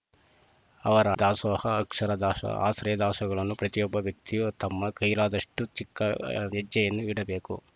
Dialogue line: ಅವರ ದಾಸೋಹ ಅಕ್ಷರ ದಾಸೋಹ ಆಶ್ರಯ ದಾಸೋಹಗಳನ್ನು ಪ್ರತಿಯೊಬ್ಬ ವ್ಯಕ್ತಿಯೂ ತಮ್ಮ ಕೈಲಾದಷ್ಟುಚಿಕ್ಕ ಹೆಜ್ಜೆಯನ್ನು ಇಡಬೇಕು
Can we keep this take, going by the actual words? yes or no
yes